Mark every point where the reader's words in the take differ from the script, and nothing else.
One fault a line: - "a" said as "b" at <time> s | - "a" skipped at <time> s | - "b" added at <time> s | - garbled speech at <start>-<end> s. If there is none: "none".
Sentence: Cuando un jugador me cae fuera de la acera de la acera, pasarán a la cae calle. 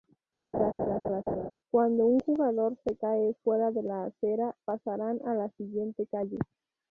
- "me" said as "se" at 2.8 s
- "de la acera" skipped at 4.6 s
- "cae" said as "siguiente" at 5.6 s